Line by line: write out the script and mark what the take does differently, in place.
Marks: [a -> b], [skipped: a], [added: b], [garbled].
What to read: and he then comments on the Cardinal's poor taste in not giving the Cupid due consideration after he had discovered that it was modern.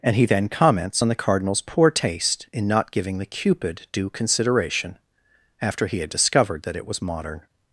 and he then comments on the Cardinal's poor taste in not giving the Cupid due consideration after he had discovered that it was modern.